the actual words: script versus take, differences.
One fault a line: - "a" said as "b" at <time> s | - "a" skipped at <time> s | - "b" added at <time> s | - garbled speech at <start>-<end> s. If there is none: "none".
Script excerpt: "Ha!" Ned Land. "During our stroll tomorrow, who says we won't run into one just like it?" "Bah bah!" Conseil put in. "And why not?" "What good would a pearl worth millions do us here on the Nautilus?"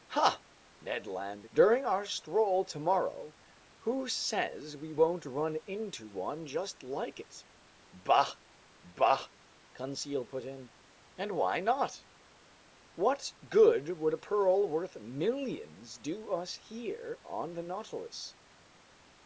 none